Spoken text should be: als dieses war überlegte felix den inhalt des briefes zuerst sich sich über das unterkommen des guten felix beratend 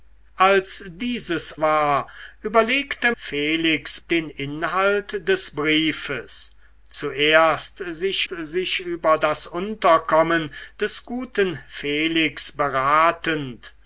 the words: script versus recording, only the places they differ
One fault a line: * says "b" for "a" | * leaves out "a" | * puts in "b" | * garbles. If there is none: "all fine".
all fine